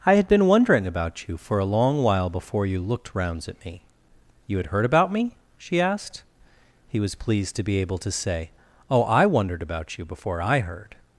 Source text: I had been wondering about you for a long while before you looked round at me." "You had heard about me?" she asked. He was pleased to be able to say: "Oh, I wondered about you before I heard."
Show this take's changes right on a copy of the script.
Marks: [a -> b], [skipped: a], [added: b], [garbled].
I had been wondering about you for a long while before you looked [round -> rounds] at me." "You had heard about me?" she asked. He was pleased to be able to say: "Oh, I wondered about you before I heard."